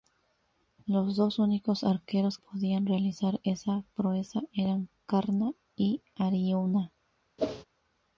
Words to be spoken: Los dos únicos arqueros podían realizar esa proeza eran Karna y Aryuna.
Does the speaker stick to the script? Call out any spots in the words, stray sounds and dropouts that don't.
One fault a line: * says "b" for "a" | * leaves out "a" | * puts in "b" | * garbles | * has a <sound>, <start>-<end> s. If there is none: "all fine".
* has a whoosh, 7.4-7.7 s